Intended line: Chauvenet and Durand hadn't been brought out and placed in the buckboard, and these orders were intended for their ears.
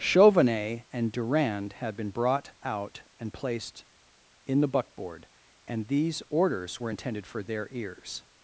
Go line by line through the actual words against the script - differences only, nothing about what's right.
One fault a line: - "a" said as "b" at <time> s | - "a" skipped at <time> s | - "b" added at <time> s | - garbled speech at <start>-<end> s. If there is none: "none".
- "hadn't" said as "had" at 1.7 s